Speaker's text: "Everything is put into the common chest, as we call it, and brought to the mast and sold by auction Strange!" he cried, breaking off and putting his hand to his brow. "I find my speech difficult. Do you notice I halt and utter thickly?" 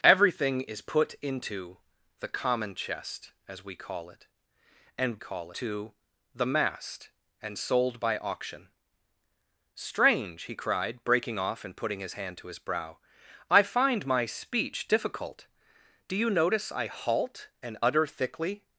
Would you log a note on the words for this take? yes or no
yes